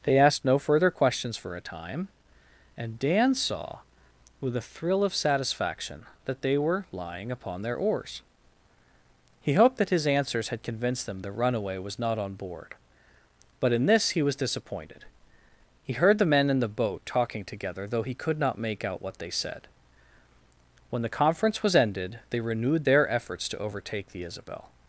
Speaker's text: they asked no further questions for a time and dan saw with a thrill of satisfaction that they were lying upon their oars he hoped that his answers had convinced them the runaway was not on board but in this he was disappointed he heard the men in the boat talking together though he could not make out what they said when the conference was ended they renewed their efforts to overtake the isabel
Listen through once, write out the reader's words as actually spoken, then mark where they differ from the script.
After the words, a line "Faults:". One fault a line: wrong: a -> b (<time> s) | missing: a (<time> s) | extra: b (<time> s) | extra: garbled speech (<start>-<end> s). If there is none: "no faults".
they asked no further questions for a time and dan saw with a thrill of satisfaction that they were lying upon their oars he hoped that his answers had convinced them the runaway was not on board but in this he was disappointed he heard the men in the boat talking together though he could not make out what they said when the conference was ended they renewed their efforts to overtake the isabel
Faults:
no faults